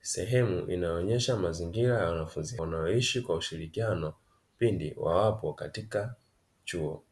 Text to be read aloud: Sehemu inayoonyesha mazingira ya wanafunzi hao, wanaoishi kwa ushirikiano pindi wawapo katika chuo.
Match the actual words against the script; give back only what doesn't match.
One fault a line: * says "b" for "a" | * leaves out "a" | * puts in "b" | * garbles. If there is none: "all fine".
* leaves out "hao"